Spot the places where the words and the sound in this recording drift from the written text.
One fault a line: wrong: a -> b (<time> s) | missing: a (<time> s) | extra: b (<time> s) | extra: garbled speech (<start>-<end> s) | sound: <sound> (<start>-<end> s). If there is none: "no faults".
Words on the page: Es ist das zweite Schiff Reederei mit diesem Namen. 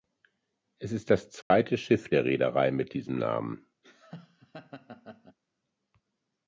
sound: dropout (1.4-1.5 s)
extra: der (2.1 s)
sound: laugh (3.8-5.4 s)